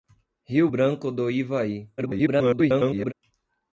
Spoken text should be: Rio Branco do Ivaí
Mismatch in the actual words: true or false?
true